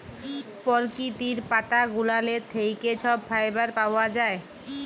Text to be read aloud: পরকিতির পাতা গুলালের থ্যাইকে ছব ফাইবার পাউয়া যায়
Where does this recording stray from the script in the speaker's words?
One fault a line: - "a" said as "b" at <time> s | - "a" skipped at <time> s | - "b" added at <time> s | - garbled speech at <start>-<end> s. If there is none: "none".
none